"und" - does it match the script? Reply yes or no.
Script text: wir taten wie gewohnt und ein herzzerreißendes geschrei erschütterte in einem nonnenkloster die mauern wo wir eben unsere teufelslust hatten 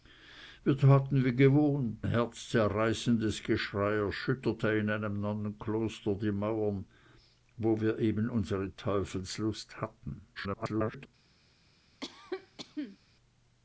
no